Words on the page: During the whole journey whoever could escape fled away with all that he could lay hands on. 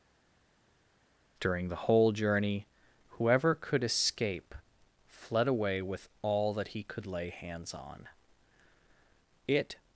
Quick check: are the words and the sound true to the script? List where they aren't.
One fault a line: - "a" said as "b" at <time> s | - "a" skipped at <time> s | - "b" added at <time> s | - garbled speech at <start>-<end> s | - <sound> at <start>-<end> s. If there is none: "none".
- "It" added at 9.5 s